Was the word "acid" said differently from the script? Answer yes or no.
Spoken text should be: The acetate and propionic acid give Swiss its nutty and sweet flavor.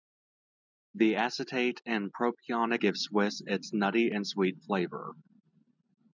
yes